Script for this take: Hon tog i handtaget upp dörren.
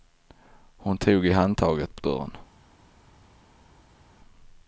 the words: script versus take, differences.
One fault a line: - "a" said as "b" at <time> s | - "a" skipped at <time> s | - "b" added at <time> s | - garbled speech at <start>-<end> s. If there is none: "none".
none